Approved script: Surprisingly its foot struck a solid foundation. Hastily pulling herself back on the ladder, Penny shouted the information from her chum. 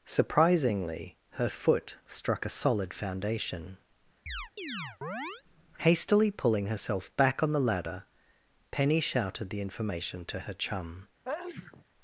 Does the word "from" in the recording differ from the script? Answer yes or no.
yes